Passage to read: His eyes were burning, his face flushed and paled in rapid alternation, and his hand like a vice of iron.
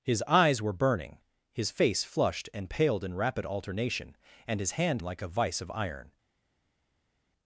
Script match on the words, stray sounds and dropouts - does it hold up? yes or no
yes